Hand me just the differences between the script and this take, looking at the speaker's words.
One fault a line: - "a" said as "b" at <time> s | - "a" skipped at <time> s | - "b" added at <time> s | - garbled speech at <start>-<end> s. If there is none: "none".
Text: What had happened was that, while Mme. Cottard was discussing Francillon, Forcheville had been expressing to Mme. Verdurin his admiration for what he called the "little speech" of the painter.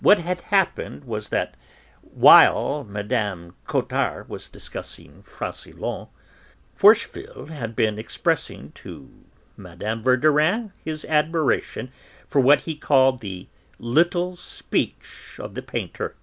none